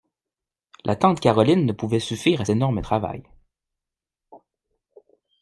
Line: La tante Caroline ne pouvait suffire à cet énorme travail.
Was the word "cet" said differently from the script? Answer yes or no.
yes